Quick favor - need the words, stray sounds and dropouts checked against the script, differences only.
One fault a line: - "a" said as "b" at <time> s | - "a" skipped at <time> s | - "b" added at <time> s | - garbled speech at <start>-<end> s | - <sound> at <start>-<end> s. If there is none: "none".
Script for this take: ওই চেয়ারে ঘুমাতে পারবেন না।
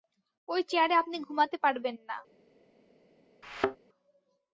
- "আপনি" added at 1.0 s
- thud at 3.4-3.8 s